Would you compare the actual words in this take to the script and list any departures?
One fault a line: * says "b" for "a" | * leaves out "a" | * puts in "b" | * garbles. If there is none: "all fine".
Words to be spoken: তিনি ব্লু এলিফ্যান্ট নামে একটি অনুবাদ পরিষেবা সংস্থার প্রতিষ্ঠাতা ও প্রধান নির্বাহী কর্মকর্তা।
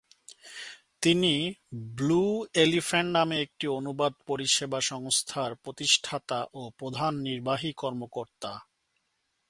all fine